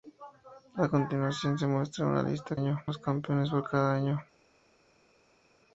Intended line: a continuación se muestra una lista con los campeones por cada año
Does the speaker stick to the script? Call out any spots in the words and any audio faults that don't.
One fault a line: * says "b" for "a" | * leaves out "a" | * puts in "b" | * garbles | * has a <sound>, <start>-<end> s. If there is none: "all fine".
* says "año" for "con"